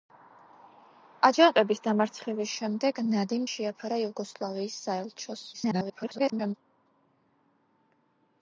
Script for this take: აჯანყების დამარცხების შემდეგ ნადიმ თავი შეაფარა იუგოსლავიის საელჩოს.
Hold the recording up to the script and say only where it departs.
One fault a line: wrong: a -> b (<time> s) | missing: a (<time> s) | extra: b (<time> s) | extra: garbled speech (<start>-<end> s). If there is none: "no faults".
missing: თავი (3.4 s)
extra: garbled speech (5.5-6.5 s)